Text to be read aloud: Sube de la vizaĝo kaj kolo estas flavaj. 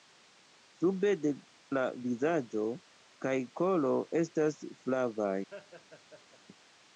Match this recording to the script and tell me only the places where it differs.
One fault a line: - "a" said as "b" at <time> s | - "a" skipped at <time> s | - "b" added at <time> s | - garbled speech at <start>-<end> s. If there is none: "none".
none